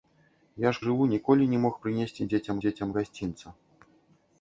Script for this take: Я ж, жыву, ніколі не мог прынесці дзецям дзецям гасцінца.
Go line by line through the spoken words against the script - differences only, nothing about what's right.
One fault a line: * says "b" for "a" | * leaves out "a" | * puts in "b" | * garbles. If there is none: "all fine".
all fine